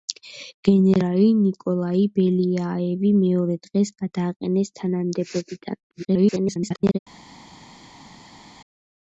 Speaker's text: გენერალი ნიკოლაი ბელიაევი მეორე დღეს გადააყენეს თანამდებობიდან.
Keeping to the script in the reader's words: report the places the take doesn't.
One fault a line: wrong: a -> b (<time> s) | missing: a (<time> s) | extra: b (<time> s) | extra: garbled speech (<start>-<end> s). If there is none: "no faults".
extra: garbled speech (5.9-7.0 s)